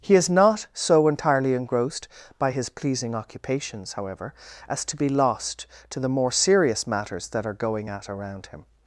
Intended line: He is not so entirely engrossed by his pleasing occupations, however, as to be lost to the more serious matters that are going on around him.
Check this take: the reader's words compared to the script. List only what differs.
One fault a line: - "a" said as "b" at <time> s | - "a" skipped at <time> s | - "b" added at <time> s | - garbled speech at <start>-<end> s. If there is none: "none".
- "on" said as "at" at 7.9 s